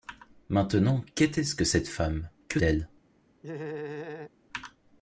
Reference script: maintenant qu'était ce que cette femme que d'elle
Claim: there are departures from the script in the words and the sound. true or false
true